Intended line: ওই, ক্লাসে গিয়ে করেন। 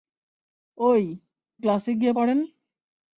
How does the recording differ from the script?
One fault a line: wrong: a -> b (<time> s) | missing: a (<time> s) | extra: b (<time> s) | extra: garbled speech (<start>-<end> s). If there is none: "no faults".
no faults